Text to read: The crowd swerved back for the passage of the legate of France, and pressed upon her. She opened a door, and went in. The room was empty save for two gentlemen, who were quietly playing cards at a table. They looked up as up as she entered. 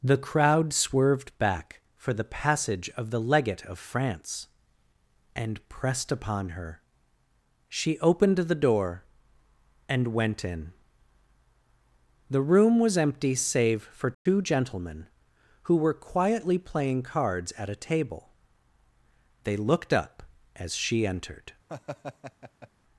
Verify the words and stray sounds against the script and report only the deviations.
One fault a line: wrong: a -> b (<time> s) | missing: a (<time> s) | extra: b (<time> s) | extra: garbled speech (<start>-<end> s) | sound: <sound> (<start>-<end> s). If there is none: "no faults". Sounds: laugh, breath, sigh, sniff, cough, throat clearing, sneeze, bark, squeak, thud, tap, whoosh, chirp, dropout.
wrong: a -> the (8.4 s)
sound: dropout (14.1-14.3 s)
missing: up as (20.7 s)
sound: laugh (21.7-22.7 s)